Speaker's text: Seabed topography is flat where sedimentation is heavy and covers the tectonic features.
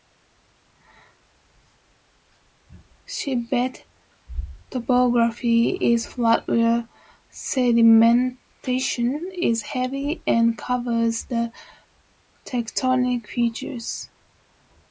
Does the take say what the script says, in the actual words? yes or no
yes